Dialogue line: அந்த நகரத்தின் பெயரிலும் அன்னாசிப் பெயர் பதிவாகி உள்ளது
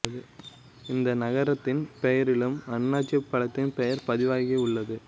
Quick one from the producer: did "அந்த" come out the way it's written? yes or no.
no